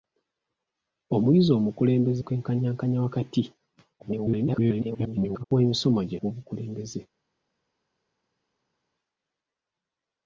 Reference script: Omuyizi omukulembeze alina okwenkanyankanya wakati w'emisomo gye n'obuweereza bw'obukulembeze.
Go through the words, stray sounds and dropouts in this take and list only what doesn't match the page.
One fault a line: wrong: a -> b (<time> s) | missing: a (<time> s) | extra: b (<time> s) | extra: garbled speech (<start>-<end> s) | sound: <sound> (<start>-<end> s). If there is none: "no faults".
missing: alina (2.2 s)
extra: garbled speech (4.0-5.4 s)
missing: n'obuweereza (6.2 s)